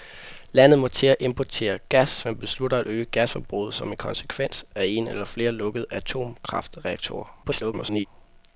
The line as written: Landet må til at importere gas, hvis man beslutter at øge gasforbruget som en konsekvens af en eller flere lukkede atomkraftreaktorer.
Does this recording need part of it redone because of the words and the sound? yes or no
yes